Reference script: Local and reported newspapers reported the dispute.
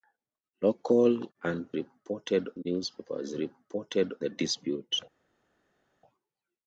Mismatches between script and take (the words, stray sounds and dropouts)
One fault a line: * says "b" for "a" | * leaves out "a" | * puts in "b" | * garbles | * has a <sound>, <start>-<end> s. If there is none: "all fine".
all fine